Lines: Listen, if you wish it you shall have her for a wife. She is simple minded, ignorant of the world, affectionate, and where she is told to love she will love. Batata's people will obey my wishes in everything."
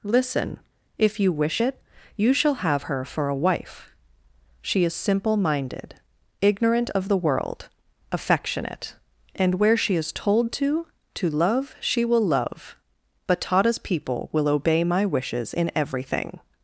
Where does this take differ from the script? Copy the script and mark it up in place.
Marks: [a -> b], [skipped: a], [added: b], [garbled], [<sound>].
Listen, if you wish it you shall have her for a wife. She is simple minded, ignorant of the world, affectionate, and where she is told to [added: to] love she will love. Batata's people will obey my wishes in everything."